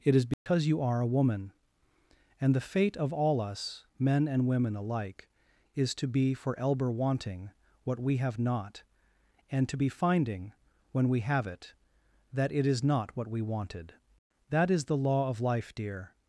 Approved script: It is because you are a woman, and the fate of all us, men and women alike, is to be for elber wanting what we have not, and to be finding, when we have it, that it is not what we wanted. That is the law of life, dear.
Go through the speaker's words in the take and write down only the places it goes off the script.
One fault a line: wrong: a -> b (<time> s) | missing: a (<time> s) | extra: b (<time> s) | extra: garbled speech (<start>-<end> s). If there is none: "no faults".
no faults